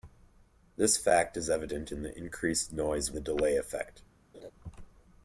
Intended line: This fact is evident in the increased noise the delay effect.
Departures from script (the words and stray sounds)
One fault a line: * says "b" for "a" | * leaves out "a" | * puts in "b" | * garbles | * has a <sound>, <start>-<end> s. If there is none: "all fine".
* has a laugh, 4.3-4.5 s